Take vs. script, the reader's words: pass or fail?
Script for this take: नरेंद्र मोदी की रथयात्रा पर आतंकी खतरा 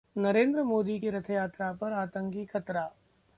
pass